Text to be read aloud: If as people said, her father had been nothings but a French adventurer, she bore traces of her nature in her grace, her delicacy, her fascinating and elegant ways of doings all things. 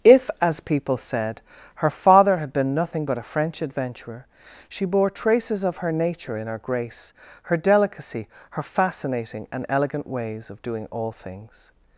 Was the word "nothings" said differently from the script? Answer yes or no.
yes